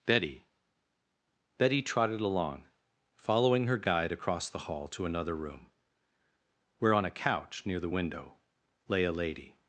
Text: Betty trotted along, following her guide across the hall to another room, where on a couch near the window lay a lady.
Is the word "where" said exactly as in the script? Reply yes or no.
yes